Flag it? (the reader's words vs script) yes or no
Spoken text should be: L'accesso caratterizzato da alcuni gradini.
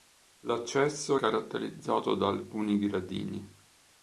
no